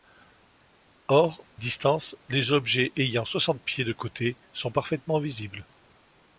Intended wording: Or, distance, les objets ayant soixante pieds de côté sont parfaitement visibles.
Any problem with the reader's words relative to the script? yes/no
no